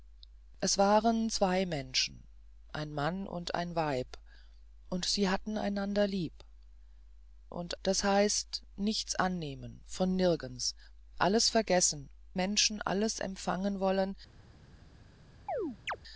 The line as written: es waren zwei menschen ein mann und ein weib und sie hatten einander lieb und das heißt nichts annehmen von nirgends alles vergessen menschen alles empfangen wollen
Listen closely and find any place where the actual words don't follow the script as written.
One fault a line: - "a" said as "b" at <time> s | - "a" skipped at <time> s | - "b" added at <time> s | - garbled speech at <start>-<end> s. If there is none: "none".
none